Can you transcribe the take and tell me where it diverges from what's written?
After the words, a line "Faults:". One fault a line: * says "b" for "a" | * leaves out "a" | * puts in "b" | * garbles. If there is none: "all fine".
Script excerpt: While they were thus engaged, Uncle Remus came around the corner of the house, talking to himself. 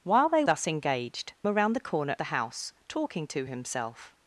While they thus engaged, Around the corner the house, talking to himself.
Faults:
* leaves out "were"
* leaves out "Uncle Remus came"
* leaves out "of"